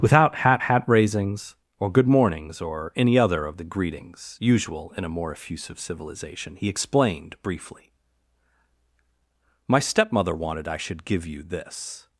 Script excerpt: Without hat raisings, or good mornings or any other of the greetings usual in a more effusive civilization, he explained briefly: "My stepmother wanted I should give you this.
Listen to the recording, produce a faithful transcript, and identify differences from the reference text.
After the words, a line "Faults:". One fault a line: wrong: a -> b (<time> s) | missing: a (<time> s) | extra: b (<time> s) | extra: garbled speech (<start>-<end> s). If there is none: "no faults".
Without hat hat raisings, or good mornings or any other of the greetings usual in a more effusive civilization, he explained briefly: "My stepmother wanted I should give you this.
Faults:
extra: hat (0.6 s)